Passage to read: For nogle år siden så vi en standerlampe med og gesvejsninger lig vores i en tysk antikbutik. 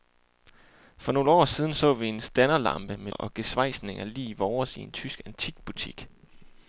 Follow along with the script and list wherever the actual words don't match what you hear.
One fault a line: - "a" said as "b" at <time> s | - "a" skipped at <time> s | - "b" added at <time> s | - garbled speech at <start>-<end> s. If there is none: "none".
none